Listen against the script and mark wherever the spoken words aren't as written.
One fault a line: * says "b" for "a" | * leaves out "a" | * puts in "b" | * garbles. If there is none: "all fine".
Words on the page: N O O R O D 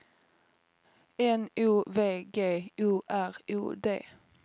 * puts in "V G"